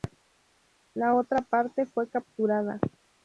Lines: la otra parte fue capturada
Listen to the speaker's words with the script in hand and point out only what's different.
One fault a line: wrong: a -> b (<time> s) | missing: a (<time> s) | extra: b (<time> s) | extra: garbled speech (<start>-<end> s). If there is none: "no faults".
no faults